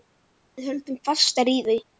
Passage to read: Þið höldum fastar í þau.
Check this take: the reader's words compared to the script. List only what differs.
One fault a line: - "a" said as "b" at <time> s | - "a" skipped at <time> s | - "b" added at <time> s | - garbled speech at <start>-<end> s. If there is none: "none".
- "Þið" said as "Við" at 0.6 s